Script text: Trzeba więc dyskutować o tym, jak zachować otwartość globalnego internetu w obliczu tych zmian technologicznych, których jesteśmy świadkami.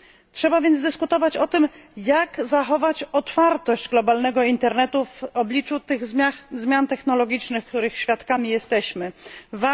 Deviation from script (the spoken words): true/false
false